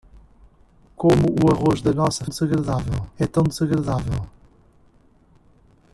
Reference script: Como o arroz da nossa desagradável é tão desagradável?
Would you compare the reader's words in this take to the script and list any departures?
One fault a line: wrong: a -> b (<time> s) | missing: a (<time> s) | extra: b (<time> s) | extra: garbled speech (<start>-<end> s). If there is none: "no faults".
no faults